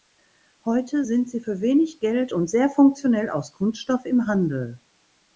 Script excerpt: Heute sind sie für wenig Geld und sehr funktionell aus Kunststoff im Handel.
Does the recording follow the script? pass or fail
pass